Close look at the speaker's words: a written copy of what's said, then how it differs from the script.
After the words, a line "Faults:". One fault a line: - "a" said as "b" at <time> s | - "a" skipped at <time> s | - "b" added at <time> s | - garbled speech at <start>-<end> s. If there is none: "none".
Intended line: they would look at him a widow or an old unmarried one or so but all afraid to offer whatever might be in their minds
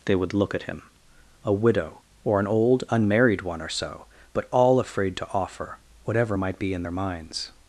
they would look at him a widow or an old unmarried one or so but all afraid to offer whatever might be in their minds
Faults:
none